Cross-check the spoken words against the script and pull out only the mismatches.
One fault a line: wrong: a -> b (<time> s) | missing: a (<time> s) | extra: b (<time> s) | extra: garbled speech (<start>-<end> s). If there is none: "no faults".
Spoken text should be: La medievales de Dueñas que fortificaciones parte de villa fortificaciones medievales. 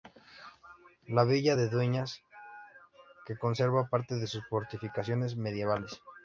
wrong: medievales -> villa (1.2 s)
wrong: fortificaciones -> conserva (3.4 s)
wrong: villa -> sus (4.3 s)